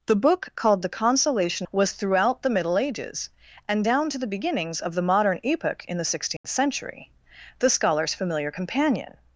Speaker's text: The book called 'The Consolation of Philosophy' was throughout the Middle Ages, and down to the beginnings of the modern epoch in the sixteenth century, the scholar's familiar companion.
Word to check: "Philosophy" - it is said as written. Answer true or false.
false